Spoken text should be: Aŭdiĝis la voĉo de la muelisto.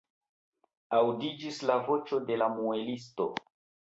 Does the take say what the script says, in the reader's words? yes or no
yes